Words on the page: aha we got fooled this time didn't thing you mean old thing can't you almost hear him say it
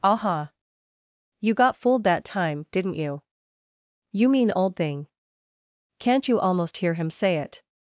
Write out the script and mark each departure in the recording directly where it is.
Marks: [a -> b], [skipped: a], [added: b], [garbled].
aha [we -> you] got fooled [this -> that] time didn't [thing -> you] you mean old thing can't you almost hear him say it